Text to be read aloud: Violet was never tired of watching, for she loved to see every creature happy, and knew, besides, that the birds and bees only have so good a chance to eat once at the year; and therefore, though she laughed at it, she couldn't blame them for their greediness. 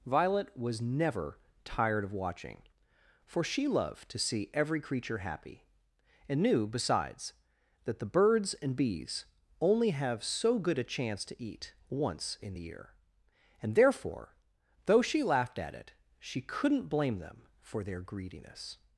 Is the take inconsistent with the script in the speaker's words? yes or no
yes